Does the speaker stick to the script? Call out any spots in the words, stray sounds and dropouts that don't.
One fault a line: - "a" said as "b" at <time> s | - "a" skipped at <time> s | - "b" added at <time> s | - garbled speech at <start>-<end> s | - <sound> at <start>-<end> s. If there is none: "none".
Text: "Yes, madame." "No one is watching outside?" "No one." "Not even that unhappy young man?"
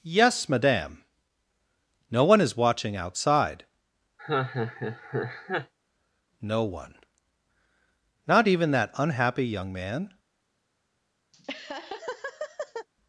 - laugh at 4.2-5.7 s
- laugh at 11.3-12.9 s